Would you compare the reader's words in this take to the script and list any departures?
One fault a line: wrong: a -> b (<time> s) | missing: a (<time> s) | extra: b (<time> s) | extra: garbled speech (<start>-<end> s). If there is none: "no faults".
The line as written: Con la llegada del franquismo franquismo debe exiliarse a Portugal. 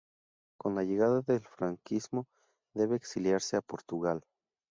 missing: franquismo (2.3 s)